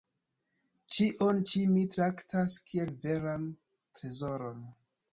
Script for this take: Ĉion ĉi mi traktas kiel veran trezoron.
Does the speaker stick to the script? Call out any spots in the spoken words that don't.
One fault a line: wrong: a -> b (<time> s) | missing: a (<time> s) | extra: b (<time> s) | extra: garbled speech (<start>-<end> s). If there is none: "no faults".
no faults